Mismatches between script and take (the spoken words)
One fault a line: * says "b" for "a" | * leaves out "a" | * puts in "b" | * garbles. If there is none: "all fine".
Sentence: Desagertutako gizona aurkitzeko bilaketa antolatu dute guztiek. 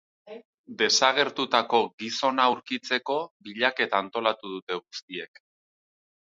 all fine